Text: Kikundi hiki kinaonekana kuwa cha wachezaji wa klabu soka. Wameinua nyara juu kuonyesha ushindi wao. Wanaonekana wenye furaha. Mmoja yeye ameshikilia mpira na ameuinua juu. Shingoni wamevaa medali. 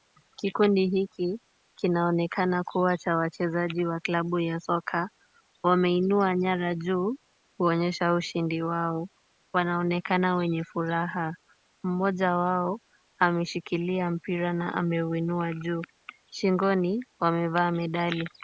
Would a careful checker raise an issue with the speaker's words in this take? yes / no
yes